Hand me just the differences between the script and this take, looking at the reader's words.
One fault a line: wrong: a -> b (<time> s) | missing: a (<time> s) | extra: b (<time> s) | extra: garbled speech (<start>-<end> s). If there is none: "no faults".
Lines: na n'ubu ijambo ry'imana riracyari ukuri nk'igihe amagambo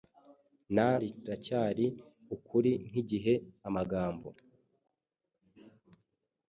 missing: n'ubu ijambo ry'imana (0.9 s)